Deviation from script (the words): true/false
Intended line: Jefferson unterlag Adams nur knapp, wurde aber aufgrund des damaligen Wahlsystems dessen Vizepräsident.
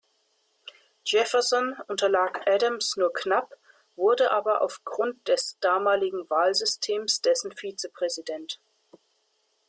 false